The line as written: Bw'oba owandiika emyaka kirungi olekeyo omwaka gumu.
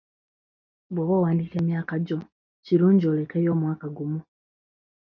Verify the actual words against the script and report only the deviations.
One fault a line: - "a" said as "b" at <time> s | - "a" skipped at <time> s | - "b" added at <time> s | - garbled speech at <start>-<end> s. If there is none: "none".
- "gyo" added at 2.0 s